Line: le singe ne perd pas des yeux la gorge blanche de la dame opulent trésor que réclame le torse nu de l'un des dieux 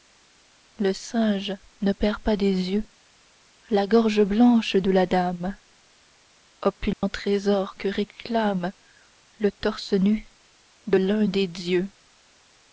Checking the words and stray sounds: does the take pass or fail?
fail